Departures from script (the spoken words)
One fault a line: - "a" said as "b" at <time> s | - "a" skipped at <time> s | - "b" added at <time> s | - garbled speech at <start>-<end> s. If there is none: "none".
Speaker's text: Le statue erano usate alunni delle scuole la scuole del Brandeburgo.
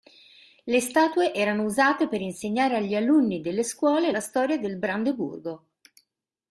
- "per insegnare agli" added at 2.1 s
- "scuole" said as "storia" at 4.2 s